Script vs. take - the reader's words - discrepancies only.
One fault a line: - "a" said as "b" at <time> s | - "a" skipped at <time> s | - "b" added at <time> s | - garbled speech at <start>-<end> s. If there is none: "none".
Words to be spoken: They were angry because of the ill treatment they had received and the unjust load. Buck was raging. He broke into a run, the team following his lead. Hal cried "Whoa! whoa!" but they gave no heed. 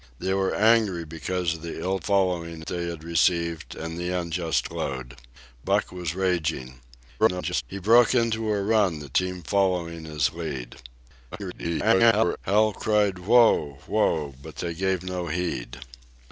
- "treatment" said as "following" at 2.0 s
- garbled speech at 7.2-7.6 s
- garbled speech at 11.3-12.4 s